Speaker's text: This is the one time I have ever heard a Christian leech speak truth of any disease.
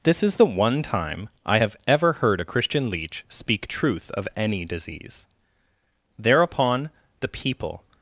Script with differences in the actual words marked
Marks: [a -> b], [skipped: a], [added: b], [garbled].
This is the one time I have ever heard a Christian leech speak truth of any disease. [added: Thereupon the people]